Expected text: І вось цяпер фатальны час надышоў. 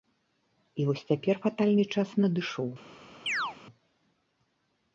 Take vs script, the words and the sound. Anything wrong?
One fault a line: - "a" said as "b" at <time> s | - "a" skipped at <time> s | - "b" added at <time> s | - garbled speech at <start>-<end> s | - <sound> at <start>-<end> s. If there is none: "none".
- chirp at 3.3-3.6 s